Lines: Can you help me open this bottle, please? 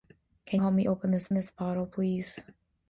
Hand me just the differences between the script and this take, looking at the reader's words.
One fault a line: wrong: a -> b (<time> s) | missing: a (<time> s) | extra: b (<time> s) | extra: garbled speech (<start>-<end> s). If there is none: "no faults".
missing: you (0.6 s)
extra: this (1.3 s)